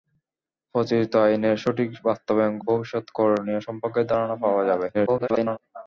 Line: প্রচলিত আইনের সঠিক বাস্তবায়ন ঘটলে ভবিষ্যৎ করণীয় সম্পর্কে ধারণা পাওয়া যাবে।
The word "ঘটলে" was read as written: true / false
false